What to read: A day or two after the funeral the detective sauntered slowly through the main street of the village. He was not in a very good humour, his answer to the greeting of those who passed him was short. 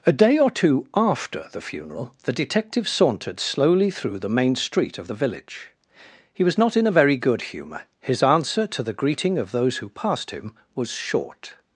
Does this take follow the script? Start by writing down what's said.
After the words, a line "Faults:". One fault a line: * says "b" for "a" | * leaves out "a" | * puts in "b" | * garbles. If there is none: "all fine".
A day or two after the funeral the detective sauntered slowly through the main street of the village. He was not in a very good humour, his answer to the greeting of those who passed him was short.
Faults:
all fine